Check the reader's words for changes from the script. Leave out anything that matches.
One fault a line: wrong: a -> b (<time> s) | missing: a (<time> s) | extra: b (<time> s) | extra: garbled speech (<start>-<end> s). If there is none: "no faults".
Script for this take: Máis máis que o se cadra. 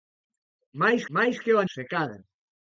no faults